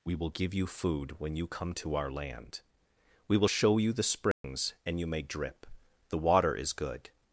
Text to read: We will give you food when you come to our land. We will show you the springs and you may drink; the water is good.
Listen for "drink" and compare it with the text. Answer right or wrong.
wrong